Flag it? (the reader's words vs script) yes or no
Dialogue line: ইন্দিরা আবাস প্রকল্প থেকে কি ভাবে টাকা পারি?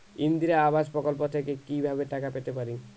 yes